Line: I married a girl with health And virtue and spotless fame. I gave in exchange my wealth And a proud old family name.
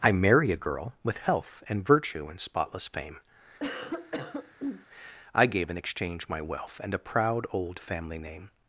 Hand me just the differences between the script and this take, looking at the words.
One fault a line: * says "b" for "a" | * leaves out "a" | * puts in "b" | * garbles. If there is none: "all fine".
* says "marry" for "married"